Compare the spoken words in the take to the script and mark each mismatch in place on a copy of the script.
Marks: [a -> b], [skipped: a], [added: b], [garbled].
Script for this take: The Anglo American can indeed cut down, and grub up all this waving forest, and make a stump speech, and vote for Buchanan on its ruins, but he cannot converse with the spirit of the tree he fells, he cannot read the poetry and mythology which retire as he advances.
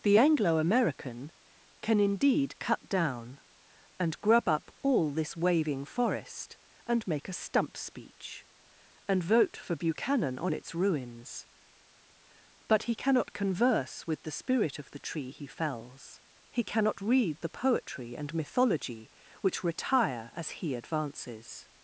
The Anglo American can indeed cut down, and grub up all this waving forest, and make a stump speech, and vote for Buchanan on its ruins, but he cannot converse with the spirit of the tree he fells, he cannot read the poetry and mythology which retire as he advances.